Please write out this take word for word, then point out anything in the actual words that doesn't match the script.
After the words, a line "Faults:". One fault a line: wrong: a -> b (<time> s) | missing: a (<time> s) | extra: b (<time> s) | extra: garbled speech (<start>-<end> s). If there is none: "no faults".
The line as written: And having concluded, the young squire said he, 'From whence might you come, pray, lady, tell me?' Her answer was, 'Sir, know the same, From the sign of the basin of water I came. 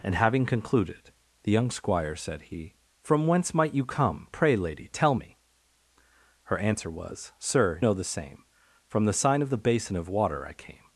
And having concluded, the young squire said he, 'From whence might you come, pray, lady, tell me?' Her answer was, 'Sir, know the same, From the sign of the basin of water I came.
Faults:
no faults